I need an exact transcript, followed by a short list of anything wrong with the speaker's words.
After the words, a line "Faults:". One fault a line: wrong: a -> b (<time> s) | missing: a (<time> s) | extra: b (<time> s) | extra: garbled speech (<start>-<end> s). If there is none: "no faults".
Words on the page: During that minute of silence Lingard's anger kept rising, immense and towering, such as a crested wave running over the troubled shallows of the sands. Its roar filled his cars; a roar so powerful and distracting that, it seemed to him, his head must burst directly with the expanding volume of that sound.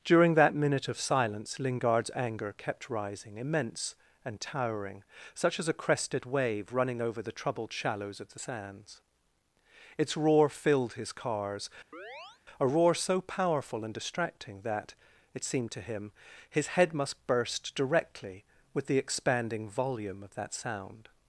During that minute of silence Lingard's anger kept rising, immense and towering, such as a crested wave running over the troubled shallows of the sands. Its roar filled his cars; a roar so powerful and distracting that, it seemed to him, his head must burst directly with the expanding volume of that sound.
Faults:
no faults